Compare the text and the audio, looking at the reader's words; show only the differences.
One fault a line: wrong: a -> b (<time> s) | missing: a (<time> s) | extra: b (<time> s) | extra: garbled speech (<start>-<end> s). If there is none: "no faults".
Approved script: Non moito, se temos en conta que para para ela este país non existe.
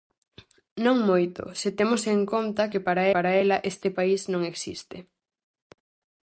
no faults